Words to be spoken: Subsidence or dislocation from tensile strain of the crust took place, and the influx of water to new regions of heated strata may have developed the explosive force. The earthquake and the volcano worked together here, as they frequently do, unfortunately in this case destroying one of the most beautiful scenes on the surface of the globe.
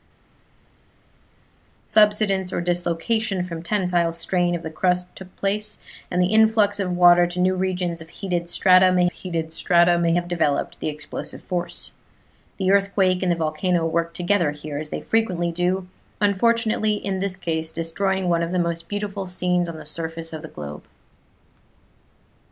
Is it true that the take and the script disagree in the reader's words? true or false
true